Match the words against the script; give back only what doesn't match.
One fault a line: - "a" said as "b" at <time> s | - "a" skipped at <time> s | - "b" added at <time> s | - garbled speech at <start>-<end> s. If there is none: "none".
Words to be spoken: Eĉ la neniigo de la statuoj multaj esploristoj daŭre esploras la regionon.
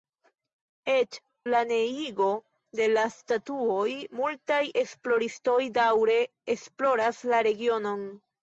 none